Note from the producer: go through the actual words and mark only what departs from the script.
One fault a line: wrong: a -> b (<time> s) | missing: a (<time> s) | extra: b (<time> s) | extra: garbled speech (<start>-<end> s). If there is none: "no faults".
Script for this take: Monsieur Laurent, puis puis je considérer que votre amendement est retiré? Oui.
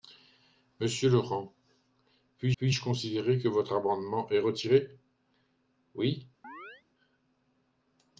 no faults